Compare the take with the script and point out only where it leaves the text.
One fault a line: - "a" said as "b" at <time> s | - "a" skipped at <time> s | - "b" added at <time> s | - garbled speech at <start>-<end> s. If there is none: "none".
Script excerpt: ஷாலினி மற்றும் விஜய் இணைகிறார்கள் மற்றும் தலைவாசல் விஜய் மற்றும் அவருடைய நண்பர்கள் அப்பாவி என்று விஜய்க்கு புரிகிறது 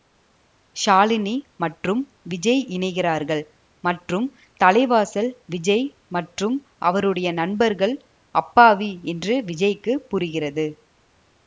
none